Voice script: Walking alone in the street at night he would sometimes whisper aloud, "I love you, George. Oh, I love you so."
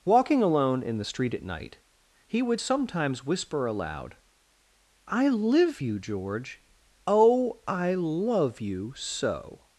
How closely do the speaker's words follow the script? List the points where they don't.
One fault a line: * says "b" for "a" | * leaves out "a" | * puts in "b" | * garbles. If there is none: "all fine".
* says "live" for "love"